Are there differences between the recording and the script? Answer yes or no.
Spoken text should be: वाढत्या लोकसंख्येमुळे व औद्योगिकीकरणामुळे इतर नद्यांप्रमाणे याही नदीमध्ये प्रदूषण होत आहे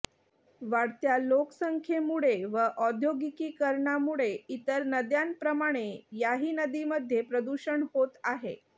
no